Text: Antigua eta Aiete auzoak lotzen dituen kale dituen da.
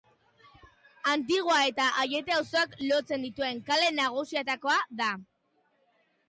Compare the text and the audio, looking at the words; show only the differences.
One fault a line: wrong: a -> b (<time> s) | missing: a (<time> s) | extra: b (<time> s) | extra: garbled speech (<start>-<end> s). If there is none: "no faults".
wrong: dituen -> nagusietakoa (4.0 s)